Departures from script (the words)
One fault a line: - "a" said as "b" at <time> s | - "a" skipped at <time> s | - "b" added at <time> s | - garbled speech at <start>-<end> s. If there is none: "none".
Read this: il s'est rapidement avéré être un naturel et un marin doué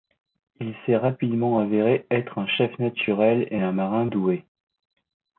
- "chef" added at 2.5 s